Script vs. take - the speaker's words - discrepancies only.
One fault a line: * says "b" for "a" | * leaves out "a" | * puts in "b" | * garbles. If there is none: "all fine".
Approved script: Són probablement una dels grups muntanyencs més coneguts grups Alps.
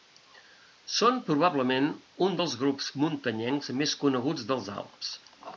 * says "un" for "una"
* says "dels" for "grups"